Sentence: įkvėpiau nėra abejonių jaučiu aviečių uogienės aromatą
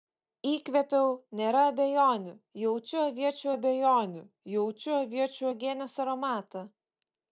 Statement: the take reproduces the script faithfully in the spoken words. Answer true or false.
false